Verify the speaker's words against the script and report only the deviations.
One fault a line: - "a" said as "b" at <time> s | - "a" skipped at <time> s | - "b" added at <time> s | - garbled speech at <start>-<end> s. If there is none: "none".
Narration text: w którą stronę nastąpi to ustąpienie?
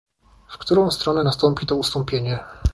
none